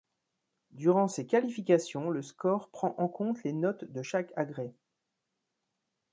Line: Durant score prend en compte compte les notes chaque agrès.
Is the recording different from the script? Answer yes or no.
yes